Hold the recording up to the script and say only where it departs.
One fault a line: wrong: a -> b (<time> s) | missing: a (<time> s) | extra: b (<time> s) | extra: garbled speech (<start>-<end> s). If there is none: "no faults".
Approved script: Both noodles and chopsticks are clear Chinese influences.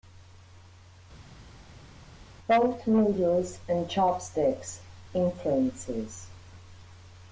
missing: are clear Chinese (4.8 s)